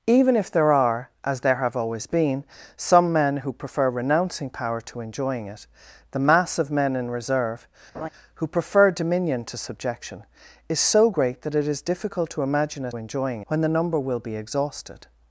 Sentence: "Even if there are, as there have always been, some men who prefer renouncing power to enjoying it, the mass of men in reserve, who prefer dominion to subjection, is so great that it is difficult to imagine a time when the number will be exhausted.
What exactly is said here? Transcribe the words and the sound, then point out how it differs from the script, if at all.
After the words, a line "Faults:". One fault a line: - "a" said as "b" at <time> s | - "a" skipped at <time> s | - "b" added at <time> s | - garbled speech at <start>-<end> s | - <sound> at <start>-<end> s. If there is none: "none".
"Even if there are, as there have always been, some men who prefer renouncing power to enjoying it, the mass of men in reserve, who prefer dominion to subjection, is so great that it is difficult to imagine a enjoying when the number will be exhausted.
Faults:
- laugh at 7.9-8.1 s
- "time" said as "enjoying" at 12.9 s